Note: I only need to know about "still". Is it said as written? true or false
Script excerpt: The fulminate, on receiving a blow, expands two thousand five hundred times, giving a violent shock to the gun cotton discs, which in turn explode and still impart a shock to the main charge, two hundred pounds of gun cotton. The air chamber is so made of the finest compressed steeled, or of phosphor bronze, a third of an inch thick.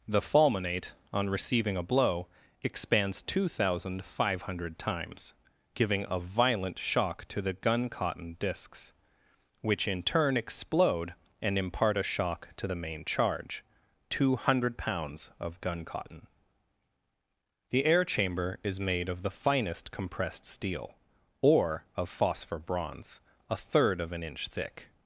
false